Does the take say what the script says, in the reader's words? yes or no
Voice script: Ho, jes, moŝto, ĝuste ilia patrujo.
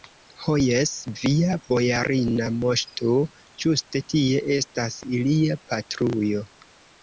no